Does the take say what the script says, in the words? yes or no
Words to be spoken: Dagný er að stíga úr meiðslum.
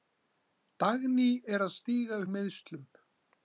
yes